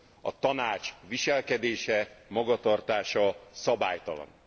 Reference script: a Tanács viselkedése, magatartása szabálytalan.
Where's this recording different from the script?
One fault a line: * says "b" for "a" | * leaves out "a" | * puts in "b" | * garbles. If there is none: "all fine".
all fine